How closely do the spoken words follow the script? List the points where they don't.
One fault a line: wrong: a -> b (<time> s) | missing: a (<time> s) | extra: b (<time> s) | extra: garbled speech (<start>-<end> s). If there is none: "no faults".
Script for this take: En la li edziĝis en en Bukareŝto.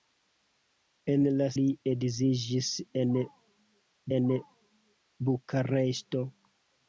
no faults